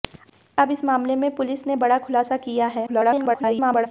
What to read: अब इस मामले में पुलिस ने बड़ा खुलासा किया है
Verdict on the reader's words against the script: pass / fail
fail